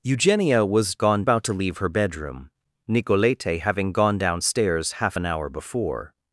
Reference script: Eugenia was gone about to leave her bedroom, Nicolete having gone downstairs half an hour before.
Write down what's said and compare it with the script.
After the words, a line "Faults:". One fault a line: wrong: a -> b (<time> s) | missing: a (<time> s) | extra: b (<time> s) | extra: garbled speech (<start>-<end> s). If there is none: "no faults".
Eugenia was gone about to leave her bedroom, Nicolete having gone downstairs half an hour before.
Faults:
no faults